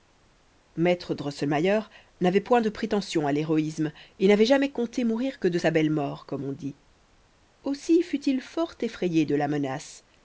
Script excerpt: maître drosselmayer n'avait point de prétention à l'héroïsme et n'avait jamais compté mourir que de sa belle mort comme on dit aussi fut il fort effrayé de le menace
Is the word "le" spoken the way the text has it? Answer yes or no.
no